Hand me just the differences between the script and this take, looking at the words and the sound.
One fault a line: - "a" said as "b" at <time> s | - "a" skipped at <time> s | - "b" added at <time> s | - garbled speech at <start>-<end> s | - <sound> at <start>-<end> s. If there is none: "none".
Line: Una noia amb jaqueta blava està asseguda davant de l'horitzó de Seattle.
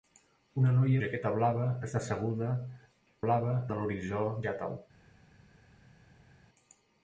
- "amb" skipped at 1.0 s
- "davant" said as "blava" at 3.2 s
- "de" skipped at 4.3 s